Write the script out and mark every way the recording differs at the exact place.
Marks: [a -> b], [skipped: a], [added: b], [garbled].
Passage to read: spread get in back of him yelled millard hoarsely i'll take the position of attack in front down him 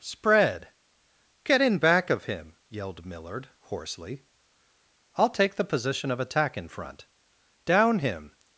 spread get in back of him yelled millard hoarsely i'll take the position of attack in front down him